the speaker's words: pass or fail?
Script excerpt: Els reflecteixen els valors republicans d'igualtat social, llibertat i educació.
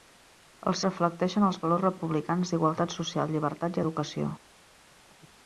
pass